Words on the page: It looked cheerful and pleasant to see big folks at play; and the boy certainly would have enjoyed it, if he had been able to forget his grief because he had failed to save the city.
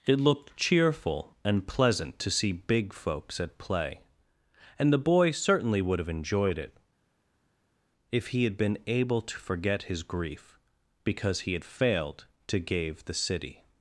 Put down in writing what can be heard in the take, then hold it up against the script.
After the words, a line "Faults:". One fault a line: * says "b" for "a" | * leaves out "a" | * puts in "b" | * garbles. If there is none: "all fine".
It looked cheerful and pleasant to see big folks at play; and the boy certainly would have enjoyed it, if he had been able to forget his grief because he had failed to gave the city.
Faults:
* says "gave" for "save"